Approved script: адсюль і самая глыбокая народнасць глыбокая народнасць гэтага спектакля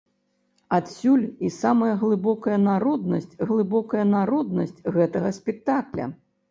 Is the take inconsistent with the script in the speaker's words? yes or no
no